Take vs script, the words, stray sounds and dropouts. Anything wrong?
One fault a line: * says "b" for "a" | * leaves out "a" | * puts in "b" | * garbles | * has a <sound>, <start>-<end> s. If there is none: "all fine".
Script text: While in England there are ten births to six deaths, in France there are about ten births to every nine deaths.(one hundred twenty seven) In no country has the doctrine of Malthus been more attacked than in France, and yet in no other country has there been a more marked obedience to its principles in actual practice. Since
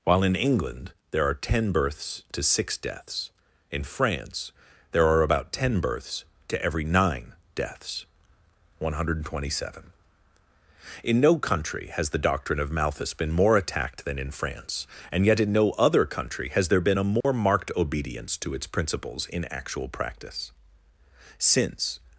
* has a dropout, 17.2-17.2 s